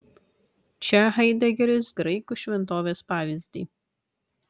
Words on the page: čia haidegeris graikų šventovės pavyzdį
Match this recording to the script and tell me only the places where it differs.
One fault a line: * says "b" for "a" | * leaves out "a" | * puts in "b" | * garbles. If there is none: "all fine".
all fine